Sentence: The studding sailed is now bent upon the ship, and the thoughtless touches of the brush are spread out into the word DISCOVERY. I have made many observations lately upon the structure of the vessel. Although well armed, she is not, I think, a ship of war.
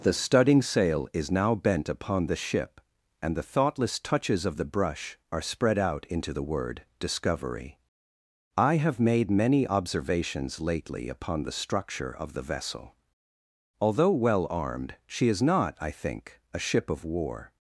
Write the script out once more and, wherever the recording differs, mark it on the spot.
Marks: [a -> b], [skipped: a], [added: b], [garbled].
The studding [sailed -> sail] is now bent upon the ship, and the thoughtless touches of the brush are spread out into the word DISCOVERY. I have made many observations lately upon the structure of the vessel. Although well armed, she is not, I think, a ship of war.